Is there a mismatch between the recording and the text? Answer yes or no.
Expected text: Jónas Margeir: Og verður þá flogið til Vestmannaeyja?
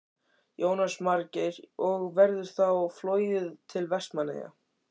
no